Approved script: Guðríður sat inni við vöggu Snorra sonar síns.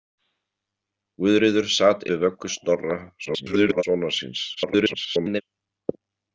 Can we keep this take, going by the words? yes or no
no